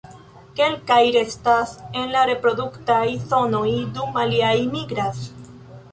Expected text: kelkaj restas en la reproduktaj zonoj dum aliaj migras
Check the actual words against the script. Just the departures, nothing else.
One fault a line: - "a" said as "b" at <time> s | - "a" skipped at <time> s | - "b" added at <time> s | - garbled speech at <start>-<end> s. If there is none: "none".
none